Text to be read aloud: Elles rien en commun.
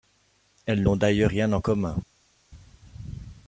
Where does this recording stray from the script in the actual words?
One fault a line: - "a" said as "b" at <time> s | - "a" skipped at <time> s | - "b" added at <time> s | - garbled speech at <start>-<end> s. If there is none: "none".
- "n'ont d'ailleurs" added at 0.8 s